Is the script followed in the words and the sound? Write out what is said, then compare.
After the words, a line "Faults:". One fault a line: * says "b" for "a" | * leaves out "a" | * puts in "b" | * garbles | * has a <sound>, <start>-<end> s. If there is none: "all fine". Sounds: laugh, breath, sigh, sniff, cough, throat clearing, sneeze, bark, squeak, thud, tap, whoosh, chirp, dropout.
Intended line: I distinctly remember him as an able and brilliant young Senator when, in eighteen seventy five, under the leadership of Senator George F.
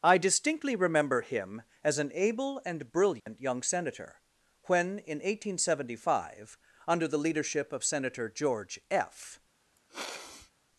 I distinctly remember him as an able and brilliant young Senator when, in eighteen seventy five, under the leadership of Senator George F.
Faults:
* has a dropout, 3.2-3.3 s
* has a sniff, 9.8-10.5 s